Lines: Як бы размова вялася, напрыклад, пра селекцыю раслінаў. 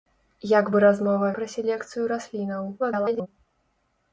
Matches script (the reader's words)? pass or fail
fail